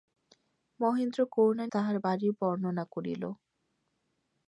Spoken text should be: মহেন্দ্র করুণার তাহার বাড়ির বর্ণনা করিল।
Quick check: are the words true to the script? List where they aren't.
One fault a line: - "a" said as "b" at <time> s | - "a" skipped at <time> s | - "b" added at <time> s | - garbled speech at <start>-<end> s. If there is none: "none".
none